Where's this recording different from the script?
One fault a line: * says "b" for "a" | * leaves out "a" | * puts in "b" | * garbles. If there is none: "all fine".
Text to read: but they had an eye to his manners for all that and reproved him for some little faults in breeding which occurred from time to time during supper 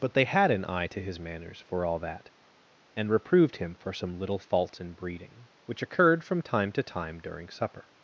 all fine